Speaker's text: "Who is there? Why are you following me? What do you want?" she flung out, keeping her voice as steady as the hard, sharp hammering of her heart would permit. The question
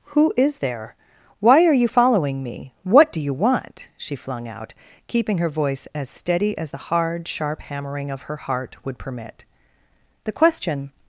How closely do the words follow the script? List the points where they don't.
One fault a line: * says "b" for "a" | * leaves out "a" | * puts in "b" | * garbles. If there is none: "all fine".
all fine